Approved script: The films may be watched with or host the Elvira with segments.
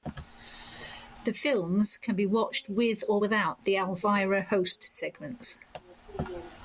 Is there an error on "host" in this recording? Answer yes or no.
yes